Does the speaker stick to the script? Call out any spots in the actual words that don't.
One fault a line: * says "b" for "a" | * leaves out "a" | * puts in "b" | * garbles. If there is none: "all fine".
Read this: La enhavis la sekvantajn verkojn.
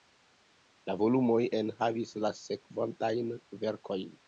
* puts in "volumoj"